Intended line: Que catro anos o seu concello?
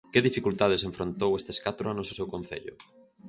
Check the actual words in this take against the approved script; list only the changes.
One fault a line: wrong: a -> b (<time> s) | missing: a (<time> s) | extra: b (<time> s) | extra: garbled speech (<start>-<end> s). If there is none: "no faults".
extra: dificultades enfrontou estes (0.3 s)